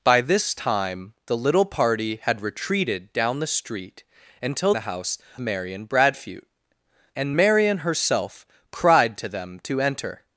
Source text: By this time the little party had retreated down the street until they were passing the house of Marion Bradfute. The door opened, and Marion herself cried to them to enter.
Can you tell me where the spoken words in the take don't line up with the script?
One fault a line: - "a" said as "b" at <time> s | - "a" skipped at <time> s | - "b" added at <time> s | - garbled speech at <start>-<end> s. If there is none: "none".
- "they were passing" skipped at 4.7 s
- "of" skipped at 5.2 s
- "The door opened" skipped at 6.5 s